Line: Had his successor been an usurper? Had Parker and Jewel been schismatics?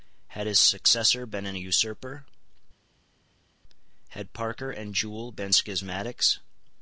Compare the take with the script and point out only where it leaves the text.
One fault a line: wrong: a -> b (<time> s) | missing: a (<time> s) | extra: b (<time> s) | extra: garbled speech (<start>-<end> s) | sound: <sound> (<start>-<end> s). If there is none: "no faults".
no faults